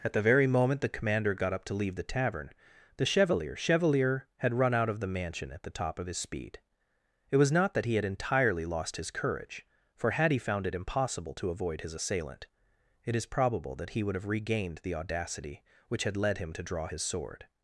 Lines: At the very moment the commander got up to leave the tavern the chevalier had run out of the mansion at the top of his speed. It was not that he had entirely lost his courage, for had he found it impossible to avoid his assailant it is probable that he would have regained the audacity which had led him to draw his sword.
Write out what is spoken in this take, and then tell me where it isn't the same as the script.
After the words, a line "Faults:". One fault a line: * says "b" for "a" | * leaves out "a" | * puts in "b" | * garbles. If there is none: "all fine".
At the very moment the commander got up to leave the tavern the chevalier chevalier had run out of the mansion at the top of his speed. It was not that he had entirely lost his courage, for had he found it impossible to avoid his assailant it is probable that he would have regained the audacity which had led him to draw his sword.
Faults:
* puts in "chevalier"